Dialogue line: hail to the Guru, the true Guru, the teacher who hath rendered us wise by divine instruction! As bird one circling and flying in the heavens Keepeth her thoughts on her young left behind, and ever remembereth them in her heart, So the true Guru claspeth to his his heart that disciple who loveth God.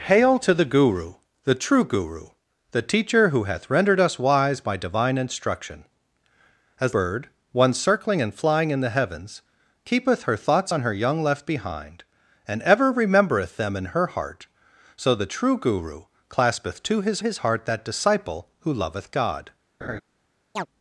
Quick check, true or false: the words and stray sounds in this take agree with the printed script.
false